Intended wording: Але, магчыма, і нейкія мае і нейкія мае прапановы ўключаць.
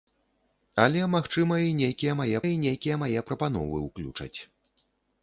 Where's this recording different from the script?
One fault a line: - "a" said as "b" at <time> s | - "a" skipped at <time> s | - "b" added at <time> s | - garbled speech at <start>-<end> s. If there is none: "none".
none